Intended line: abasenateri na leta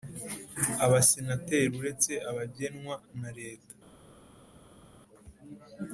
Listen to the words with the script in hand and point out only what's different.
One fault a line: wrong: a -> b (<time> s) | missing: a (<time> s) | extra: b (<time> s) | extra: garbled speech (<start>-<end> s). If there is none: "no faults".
extra: uretse abagenwa (1.8 s)